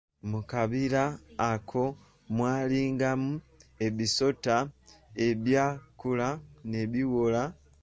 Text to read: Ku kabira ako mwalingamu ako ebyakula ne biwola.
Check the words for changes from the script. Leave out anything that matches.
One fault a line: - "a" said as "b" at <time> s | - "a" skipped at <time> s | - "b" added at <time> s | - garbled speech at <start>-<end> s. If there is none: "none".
- "Ku" said as "Mu" at 0.3 s
- "ako" said as "ebisota" at 3.9 s